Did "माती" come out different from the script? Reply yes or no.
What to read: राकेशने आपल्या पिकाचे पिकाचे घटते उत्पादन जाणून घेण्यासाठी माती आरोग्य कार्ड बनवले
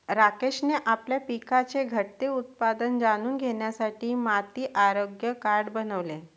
no